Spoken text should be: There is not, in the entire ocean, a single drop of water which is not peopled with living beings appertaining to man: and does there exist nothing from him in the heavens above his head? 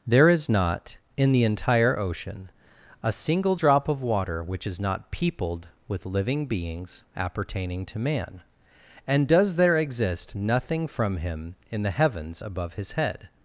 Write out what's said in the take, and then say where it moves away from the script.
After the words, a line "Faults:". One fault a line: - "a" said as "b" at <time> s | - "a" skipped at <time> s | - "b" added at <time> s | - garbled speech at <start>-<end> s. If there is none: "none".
There is not, in the entire ocean, a single drop of water which is not peopled with living beings appertaining to man: and does there exist nothing from him in the heavens above his head?
Faults:
none